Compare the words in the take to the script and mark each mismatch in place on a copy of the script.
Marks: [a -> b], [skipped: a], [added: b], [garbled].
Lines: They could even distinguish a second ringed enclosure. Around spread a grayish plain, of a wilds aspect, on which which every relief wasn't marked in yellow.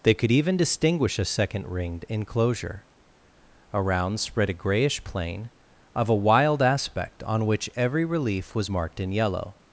They could even distinguish a second ringed enclosure. Around spread a grayish plain, of a [wilds -> wild] aspect, on which [skipped: which] every relief [wasn't -> was] marked in yellow.